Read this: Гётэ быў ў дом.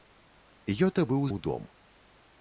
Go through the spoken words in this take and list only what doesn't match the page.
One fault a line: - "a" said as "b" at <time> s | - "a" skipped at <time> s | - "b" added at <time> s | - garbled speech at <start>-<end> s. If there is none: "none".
none